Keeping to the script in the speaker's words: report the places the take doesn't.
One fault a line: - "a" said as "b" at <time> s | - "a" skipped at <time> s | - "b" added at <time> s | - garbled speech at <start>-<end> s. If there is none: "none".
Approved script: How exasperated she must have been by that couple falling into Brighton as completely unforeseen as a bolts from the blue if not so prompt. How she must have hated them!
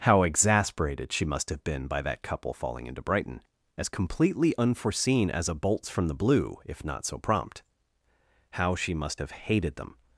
none